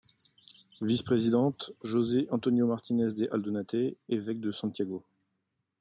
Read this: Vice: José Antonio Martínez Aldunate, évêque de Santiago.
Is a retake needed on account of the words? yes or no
yes